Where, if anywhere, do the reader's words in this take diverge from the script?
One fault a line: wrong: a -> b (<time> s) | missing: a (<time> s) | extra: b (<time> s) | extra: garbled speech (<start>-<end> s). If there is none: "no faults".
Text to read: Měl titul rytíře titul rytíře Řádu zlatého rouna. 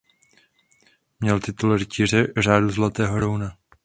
missing: titul rytíře (2.3 s)